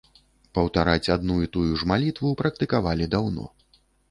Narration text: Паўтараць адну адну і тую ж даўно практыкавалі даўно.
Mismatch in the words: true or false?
true